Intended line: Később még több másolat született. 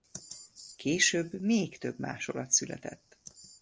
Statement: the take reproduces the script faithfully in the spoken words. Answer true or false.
true